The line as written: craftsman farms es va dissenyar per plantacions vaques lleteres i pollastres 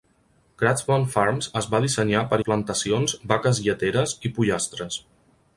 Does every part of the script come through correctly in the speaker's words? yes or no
yes